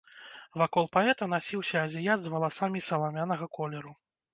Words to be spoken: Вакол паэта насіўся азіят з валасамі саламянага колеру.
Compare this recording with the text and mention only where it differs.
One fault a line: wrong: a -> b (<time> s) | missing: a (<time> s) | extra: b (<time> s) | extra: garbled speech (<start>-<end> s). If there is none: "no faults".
no faults